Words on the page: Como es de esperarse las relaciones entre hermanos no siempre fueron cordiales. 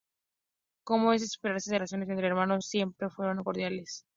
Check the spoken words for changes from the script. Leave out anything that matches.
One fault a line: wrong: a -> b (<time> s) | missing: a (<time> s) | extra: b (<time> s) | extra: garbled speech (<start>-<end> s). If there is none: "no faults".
missing: las (1.8 s)
missing: no (2.6 s)